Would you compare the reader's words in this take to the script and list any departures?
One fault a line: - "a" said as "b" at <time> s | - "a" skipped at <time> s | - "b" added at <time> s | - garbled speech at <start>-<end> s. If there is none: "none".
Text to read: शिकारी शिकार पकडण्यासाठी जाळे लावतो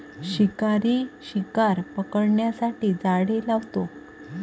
none